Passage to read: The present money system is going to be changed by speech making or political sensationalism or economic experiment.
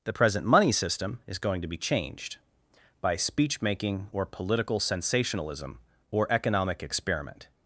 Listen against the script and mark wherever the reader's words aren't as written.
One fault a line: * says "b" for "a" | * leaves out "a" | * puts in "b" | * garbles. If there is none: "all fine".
all fine